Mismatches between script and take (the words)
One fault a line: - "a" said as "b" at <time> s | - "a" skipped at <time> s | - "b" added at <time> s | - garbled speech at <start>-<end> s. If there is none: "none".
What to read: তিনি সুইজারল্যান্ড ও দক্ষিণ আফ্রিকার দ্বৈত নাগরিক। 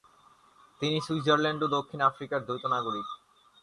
none